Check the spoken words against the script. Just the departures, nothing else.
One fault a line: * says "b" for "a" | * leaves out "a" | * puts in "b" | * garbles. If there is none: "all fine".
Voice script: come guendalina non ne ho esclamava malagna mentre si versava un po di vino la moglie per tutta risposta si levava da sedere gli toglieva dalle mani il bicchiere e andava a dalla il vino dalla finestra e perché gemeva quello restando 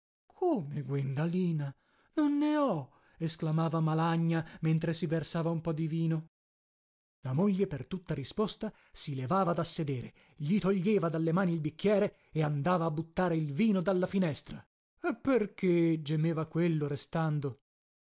* says "buttare" for "dalla"